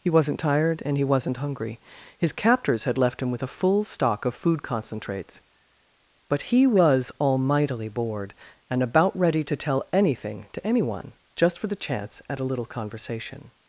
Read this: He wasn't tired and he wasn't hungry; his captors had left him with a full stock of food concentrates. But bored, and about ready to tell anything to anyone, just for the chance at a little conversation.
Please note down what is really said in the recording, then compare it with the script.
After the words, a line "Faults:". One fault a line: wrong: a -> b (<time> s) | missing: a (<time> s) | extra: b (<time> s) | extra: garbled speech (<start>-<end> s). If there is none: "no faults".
He wasn't tired and he wasn't hungry; his captors had left him with a full stock of food concentrates. But he was almightily bored, and about ready to tell anything to anyone, just for the chance at a little conversation.
Faults:
extra: he was almightily (6.4 s)